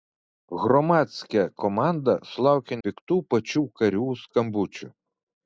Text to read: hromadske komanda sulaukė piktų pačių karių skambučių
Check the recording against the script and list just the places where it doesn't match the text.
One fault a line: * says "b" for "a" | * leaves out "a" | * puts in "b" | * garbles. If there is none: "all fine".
all fine